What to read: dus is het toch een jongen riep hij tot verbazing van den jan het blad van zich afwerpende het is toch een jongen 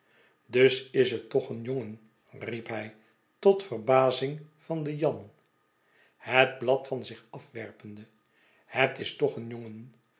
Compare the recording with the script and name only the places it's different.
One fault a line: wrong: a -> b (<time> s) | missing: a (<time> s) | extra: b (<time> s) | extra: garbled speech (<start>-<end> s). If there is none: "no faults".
no faults